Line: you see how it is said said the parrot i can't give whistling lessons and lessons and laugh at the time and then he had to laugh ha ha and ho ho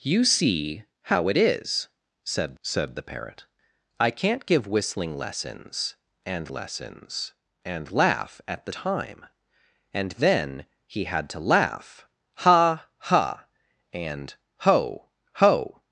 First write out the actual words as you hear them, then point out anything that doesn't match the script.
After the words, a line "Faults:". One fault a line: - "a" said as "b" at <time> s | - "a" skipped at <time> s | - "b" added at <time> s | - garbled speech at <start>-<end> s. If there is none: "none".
you see how it is said said the parrot i can't give whistling lessons and lessons and laugh at the time and then he had to laugh ha ha and ho ho
Faults:
none